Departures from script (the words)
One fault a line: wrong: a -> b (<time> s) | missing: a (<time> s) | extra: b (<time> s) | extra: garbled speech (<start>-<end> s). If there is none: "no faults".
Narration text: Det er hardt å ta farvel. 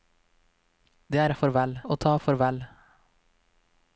wrong: hardt -> farvel (1.4 s)